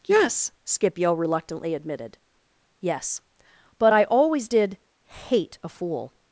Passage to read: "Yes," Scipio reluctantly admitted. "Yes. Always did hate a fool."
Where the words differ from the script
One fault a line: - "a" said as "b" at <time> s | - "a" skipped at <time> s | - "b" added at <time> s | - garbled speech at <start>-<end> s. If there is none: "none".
- "But I" added at 3.8 s